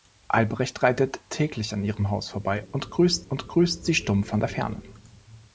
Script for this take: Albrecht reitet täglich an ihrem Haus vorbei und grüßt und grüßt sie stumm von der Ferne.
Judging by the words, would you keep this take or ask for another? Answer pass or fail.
pass